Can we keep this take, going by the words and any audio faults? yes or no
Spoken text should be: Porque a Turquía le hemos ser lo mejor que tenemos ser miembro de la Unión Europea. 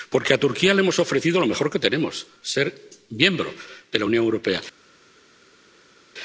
no